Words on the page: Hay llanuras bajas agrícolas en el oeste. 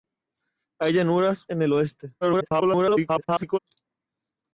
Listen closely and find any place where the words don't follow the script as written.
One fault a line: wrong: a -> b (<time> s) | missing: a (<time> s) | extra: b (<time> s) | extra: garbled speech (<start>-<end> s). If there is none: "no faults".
missing: bajas agrícolas (1.4 s)
extra: garbled speech (2.2-3.6 s)